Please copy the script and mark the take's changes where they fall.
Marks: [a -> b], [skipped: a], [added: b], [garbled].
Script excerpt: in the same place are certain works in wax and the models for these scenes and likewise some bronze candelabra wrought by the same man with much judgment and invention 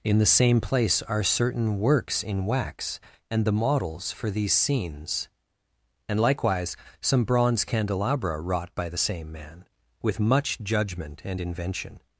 in the same place are certain works in wax and the models for these scenes and likewise some bronze candelabra wrought by the same man with much judgment and invention